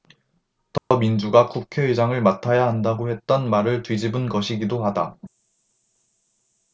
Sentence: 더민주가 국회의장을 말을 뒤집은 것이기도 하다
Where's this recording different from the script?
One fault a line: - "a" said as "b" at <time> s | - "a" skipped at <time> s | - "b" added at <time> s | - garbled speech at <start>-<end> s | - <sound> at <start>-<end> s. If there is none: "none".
- dropout at 0.8-0.9 s
- "맡아야 한다고 했던" added at 2.2 s